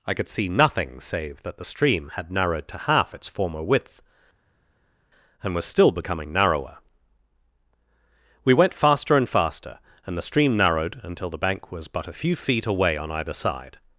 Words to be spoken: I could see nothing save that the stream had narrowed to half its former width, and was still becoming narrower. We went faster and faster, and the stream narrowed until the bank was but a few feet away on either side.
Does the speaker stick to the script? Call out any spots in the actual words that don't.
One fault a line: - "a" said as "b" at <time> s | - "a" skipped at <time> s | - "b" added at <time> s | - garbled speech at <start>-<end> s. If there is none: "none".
none